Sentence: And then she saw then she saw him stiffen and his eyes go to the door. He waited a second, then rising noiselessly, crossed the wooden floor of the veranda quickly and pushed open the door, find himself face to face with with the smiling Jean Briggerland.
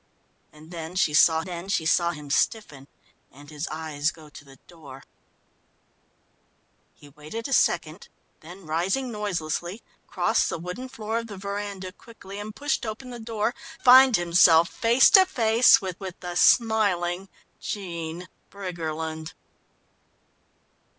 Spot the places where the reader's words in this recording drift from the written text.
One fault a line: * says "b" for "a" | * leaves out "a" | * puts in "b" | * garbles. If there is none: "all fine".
all fine